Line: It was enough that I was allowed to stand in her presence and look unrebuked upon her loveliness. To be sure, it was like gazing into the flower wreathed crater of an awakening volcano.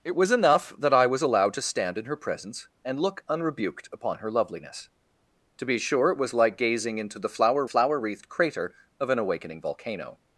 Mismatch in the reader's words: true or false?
true